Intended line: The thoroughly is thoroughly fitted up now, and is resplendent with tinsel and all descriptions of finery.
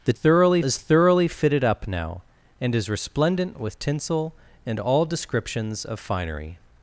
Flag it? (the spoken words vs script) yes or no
no